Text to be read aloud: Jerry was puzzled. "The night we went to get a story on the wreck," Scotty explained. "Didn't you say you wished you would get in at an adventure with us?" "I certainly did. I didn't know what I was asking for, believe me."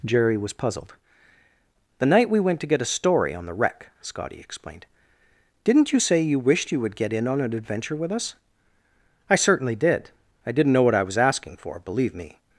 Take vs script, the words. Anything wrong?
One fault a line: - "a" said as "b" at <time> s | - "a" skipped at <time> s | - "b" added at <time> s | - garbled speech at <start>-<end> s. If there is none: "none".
- "at" said as "on" at 7.3 s